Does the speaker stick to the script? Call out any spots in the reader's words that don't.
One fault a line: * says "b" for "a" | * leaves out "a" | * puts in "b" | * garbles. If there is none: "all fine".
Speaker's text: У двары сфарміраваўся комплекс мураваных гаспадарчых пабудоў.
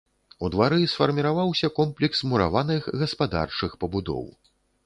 all fine